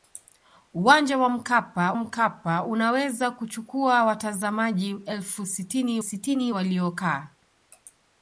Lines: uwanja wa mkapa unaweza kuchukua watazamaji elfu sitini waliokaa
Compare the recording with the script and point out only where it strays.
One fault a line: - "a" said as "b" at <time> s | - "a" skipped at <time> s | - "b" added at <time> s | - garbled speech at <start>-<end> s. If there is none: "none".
- "mkapa" added at 2.0 s
- "sitini" added at 6.0 s